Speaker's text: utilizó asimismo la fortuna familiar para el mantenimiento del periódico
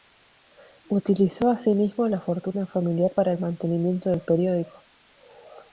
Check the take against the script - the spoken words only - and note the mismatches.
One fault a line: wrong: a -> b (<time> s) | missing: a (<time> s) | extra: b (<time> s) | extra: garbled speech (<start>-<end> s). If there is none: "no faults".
no faults